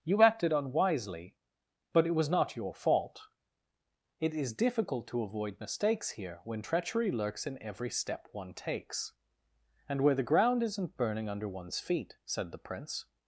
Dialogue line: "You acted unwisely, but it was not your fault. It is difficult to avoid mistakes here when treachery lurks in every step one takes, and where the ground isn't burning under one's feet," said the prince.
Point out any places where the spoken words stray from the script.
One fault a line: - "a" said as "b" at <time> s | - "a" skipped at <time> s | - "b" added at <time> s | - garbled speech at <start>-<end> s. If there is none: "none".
none